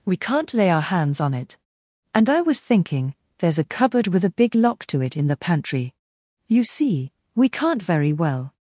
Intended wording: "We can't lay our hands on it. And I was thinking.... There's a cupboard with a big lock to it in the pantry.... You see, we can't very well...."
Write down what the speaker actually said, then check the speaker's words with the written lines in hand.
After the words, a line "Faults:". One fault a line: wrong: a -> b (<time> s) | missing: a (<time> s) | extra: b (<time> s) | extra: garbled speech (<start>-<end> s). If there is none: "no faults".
"We can't lay our hands on it. And I was thinking.... There's a cupboard with a big lock to it in the pantry.... You see, we can't very well...."
Faults:
no faults